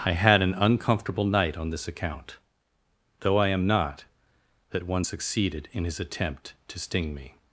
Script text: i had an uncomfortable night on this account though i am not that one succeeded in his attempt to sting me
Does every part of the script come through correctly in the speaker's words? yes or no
yes